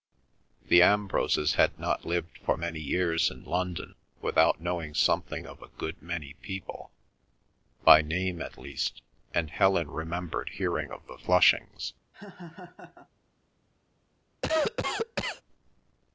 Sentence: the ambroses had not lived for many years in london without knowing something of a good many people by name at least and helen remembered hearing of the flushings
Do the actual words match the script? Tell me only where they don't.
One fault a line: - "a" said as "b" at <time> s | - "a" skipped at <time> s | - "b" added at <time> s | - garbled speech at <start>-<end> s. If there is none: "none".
none